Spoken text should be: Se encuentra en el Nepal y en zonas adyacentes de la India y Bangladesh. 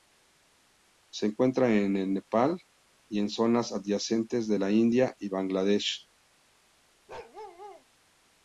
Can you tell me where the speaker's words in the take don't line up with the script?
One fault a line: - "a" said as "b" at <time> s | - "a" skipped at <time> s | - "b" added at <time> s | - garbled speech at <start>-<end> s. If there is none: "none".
none